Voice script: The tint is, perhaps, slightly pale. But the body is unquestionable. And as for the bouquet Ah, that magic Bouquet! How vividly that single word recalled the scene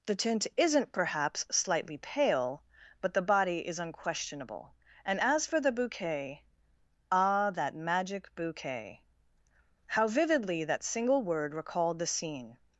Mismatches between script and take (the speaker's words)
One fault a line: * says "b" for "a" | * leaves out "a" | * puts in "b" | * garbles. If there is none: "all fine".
* says "isn't" for "is"